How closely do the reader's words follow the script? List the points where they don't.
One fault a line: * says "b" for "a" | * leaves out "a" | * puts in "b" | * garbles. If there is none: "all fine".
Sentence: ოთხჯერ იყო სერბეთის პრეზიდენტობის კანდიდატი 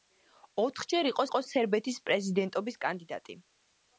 * puts in "იყო"